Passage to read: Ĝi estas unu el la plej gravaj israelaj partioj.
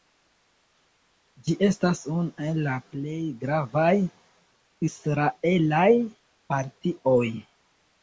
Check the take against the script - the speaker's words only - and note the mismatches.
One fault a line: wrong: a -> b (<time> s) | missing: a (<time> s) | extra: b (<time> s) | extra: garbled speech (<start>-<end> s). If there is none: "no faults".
no faults